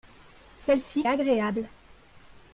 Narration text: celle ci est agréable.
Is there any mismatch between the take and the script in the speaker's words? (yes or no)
no